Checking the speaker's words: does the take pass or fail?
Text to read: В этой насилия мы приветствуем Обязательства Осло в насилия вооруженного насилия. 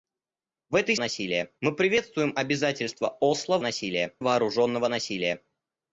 pass